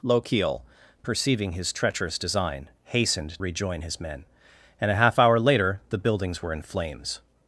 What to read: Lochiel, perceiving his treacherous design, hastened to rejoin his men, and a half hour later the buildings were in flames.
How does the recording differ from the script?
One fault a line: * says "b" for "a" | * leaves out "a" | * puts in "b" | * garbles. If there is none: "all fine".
* leaves out "to"